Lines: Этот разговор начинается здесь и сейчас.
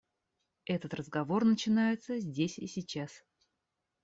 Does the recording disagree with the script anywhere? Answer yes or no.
no